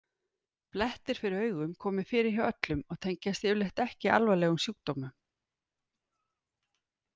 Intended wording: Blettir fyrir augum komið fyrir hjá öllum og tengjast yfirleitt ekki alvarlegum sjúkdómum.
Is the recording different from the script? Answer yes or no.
no